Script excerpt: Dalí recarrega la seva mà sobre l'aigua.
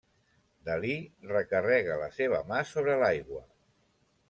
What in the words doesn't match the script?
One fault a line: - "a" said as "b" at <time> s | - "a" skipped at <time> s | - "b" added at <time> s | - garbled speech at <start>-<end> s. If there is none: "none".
none